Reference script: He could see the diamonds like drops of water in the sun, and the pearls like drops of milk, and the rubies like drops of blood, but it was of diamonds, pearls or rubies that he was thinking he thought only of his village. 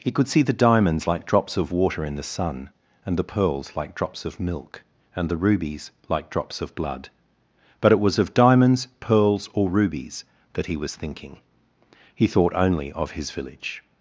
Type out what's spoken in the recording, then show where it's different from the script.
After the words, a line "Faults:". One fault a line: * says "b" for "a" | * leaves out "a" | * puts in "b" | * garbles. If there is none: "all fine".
He could see the diamonds like drops of water in the sun, and the pearls like drops of milk, and the rubies like drops of blood, but it was of diamonds, pearls or rubies that he was thinking he thought only of his village.
Faults:
all fine